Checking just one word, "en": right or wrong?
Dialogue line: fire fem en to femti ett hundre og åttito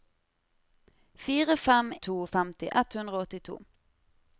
wrong